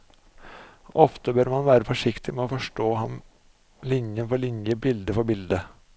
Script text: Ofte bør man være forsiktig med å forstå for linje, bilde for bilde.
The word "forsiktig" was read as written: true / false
true